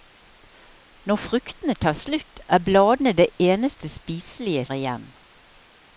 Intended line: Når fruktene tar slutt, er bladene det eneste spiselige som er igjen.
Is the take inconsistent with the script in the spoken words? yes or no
yes